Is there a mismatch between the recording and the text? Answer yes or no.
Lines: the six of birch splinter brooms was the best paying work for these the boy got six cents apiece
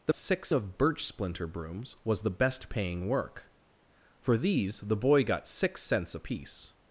no